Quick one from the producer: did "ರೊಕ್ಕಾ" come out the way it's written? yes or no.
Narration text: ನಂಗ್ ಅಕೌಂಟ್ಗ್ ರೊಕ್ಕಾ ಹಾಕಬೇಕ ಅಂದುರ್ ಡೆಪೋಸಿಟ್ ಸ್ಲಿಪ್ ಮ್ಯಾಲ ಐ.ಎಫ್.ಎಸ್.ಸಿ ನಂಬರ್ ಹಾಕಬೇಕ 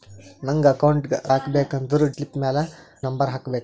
no